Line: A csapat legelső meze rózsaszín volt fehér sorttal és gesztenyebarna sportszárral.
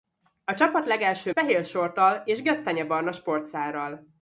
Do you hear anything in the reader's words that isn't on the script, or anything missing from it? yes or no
yes